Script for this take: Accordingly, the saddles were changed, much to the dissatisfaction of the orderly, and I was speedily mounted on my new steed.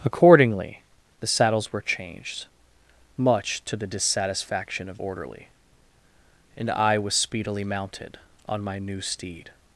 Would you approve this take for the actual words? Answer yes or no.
no